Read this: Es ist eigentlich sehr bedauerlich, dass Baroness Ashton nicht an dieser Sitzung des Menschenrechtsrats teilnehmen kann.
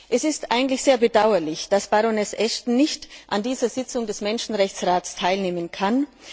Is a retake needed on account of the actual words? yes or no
no